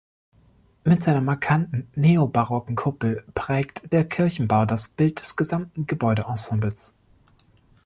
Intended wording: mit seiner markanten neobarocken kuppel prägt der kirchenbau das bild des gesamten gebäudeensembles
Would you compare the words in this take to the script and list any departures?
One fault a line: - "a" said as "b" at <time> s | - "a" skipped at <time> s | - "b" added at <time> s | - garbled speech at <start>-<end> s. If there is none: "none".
none